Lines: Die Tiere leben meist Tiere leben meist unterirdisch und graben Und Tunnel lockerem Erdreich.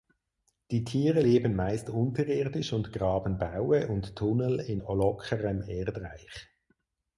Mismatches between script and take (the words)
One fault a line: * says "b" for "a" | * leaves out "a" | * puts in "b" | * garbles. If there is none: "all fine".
* leaves out "Tiere leben meist"
* puts in "Baue"
* puts in "in"